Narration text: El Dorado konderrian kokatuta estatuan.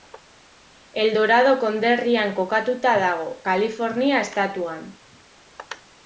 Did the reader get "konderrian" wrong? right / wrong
right